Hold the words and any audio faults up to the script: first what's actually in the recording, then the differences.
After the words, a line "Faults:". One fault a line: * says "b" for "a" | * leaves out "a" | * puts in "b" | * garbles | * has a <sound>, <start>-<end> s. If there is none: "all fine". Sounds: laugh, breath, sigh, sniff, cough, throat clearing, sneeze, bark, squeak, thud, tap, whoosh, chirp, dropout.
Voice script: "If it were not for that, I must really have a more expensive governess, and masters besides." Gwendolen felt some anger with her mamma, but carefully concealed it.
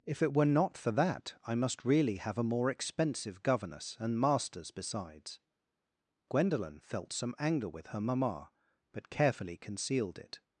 "If it were not for that, I must really have a more expensive governess, and masters besides." Gwendolen felt some anger with her mamma, but carefully concealed it.
Faults:
all fine